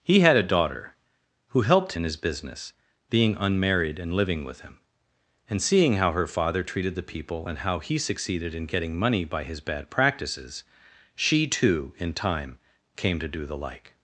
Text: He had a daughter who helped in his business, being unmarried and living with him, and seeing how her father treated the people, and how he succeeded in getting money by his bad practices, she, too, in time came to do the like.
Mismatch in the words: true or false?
false